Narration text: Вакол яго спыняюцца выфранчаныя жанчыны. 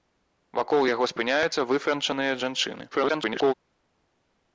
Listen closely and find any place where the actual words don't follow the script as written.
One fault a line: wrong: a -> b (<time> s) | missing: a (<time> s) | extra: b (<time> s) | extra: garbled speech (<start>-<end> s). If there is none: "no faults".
extra: garbled speech (2.9-3.5 s)